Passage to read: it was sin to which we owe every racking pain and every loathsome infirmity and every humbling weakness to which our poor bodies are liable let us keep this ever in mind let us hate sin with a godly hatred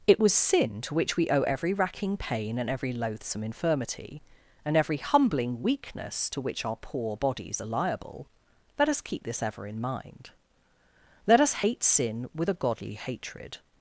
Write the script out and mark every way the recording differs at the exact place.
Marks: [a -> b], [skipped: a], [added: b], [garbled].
it was sin to which we owe every racking pain and every loathsome infirmity and every humbling weakness to which our poor bodies are liable let us keep this ever in mind let us hate sin with a godly hatred